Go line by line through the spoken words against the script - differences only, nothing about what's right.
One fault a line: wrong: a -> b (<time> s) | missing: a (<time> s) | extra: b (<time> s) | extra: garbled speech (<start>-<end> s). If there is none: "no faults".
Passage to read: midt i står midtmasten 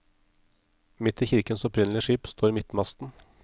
extra: kirkens opprinnelige skip (1.2 s)